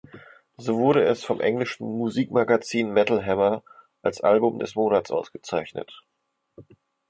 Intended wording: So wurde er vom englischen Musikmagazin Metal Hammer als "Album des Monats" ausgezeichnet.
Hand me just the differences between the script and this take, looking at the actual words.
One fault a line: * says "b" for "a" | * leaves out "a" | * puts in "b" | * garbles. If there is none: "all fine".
* says "es" for "er"